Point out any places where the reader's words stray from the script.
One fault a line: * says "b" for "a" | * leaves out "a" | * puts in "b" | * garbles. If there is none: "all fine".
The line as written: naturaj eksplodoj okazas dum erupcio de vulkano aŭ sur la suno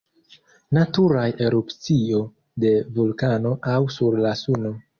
* leaves out "eksplodoj okazas dum"